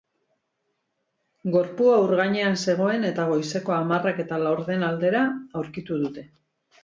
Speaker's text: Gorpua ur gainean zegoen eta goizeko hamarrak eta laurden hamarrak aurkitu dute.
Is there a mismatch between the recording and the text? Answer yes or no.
yes